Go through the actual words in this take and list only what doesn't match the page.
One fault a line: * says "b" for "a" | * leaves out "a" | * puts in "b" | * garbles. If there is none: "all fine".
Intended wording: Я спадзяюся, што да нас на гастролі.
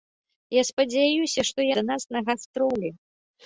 all fine